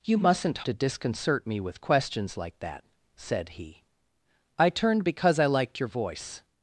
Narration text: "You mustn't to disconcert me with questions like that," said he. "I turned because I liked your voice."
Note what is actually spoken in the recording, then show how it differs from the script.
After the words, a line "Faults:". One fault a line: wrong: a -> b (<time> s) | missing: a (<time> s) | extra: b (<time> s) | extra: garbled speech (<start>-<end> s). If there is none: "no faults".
"You mustn't to disconcert me with questions like that," said he. "I turned because I liked your voice."
Faults:
no faults